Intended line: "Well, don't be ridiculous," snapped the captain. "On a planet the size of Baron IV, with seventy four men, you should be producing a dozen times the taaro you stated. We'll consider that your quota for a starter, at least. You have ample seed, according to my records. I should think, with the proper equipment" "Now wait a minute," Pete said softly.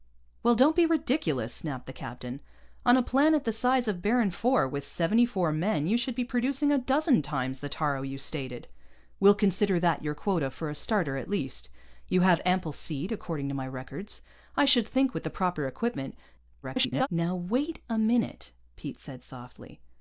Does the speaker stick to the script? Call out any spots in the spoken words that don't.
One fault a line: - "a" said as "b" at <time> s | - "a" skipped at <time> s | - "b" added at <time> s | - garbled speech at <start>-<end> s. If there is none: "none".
- garbled speech at 16.6-17.1 s